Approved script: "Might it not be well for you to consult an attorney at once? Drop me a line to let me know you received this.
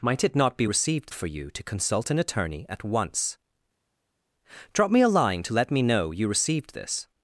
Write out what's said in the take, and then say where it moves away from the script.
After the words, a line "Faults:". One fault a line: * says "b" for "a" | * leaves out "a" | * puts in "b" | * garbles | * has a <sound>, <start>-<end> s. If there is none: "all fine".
"Might it not be received for you to consult an attorney at once? Drop me a line to let me know you received this.
Faults:
* says "received" for "well"